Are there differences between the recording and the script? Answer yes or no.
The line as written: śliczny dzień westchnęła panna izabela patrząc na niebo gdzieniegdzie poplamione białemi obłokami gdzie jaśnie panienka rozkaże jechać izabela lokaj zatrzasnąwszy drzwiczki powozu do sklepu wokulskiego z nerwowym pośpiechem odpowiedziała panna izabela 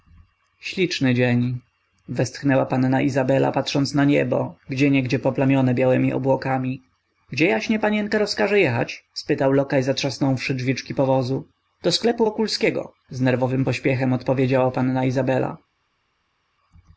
yes